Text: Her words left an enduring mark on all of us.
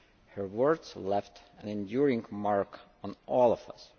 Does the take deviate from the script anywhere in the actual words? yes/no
no